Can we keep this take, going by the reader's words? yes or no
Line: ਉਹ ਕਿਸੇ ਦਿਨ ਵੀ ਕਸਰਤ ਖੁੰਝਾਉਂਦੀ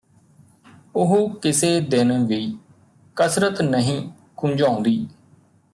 no